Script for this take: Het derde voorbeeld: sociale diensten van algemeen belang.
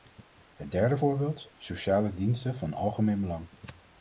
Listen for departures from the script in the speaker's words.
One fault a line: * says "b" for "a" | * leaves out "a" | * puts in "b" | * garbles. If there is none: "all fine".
all fine